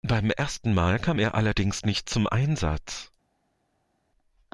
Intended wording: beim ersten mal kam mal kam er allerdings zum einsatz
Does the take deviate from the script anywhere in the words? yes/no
yes